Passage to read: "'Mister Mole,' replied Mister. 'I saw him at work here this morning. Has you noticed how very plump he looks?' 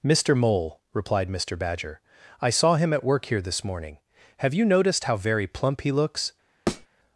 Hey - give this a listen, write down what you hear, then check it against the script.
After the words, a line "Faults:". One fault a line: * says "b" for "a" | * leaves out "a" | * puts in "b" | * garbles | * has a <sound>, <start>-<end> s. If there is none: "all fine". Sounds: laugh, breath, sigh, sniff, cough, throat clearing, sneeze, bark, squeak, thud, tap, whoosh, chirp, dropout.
"'Mister Mole,' replied Mister Badger. 'I saw him at work here this morning. Have you noticed how very plump he looks?'
Faults:
* puts in "Badger"
* says "Have" for "Has"
* has a thud, 6.7-6.9 s